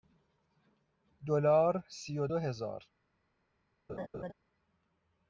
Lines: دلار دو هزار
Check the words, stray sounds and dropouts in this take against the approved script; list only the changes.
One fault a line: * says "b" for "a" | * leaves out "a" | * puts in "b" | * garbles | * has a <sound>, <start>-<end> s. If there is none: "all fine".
* puts in "سی و"
* has a laugh, 3.9-4.3 s